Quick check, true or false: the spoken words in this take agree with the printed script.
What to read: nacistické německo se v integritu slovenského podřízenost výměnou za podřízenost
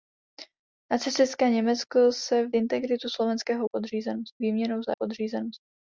true